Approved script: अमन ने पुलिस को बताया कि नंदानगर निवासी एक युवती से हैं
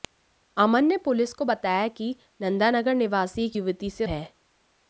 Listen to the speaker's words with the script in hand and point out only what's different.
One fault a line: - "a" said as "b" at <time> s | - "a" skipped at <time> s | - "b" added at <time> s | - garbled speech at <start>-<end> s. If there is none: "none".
none